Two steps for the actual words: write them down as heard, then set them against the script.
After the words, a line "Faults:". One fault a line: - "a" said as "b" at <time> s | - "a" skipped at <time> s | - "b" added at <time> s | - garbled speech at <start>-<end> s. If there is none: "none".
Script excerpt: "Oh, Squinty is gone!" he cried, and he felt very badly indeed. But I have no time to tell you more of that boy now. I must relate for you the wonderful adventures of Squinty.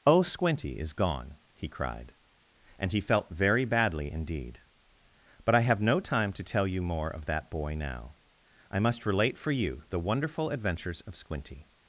"Oh, Squinty is gone!" he cried, and he felt very badly indeed. But I have no time to tell you more of that boy now. I must relate for you the wonderful adventures of Squinty.
Faults:
none